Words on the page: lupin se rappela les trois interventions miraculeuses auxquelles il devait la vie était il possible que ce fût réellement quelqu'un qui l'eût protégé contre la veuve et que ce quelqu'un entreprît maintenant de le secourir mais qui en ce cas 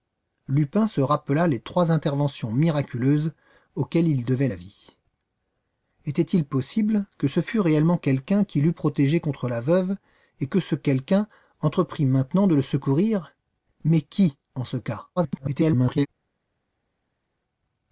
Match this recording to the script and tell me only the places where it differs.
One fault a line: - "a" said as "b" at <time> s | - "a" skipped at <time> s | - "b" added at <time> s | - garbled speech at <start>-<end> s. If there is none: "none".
- garbled speech at 15.2-16.1 s